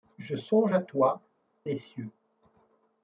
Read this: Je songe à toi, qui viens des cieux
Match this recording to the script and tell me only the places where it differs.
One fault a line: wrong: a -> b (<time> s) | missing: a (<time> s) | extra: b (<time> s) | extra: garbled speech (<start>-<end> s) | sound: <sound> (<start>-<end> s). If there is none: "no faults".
missing: qui viens (1.2 s)